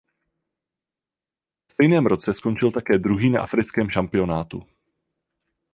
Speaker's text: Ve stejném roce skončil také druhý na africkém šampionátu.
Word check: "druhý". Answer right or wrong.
right